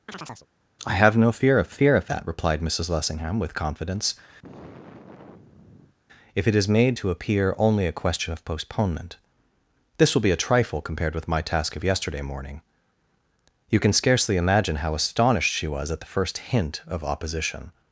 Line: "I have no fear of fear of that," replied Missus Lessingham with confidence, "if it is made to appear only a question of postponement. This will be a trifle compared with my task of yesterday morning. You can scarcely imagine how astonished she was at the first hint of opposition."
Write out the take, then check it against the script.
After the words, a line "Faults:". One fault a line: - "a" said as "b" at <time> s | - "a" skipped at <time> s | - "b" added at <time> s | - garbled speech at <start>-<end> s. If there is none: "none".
"I have no fear of fear of that," replied Missus Lessingham with confidence, "if it is made to appear only a question of postponement. This will be a trifle compared with my task of yesterday morning. You can scarcely imagine how astonished she was at the first hint of opposition."
Faults:
none